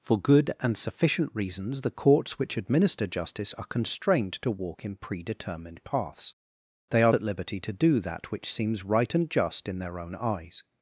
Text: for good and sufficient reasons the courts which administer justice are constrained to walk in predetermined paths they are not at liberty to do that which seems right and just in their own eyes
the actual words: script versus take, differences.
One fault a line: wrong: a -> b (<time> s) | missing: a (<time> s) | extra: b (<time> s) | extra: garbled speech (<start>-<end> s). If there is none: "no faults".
missing: not (7.1 s)